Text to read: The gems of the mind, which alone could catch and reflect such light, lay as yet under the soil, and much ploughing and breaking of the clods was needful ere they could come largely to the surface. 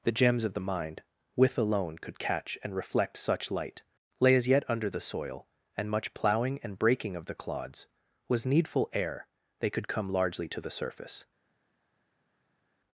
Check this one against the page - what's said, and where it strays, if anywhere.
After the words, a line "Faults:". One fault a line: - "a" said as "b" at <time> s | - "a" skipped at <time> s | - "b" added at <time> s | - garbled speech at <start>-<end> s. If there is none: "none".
The gems of the mind, with alone could catch and reflect such light, lay as yet under the soil, and much ploughing and breaking of the clods was needful ere they could come largely to the surface.
Faults:
- "which" said as "with" at 1.4 s